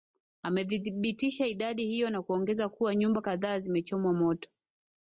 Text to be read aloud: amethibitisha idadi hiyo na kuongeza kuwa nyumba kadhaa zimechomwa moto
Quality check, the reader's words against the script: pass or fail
pass